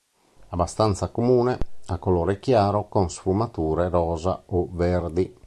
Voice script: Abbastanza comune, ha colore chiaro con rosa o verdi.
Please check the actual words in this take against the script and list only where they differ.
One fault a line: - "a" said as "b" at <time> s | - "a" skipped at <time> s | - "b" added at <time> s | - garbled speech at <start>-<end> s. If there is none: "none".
- "sfumature" added at 3.1 s